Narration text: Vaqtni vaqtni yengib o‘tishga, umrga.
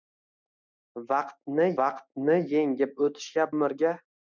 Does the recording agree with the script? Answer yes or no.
yes